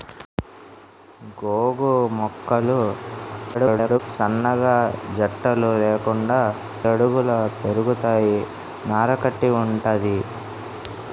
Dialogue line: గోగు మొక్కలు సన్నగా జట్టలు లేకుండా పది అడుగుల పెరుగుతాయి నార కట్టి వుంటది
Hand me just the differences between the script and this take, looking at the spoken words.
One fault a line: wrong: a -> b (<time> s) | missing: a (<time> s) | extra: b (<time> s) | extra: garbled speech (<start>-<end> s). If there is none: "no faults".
extra: garbled speech (3.5-4.0 s)
missing: పది (6.4 s)